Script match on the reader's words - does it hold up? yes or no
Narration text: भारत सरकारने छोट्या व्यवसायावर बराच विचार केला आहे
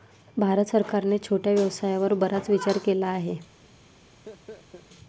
yes